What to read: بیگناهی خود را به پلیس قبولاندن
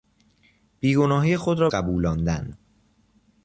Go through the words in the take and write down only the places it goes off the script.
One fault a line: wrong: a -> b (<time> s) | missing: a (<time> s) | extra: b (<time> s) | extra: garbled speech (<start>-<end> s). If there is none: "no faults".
missing: به پلیس (1.7 s)